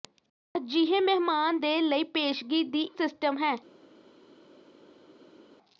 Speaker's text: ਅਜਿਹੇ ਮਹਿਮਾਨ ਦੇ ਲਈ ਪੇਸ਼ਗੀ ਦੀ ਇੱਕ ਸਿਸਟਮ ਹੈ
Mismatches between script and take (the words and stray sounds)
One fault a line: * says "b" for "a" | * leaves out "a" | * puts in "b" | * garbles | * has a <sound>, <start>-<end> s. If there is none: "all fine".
* leaves out "ਇੱਕ"